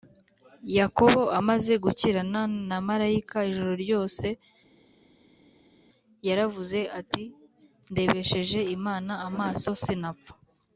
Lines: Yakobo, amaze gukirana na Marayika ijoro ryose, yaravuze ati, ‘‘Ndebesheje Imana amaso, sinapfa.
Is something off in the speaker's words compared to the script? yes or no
no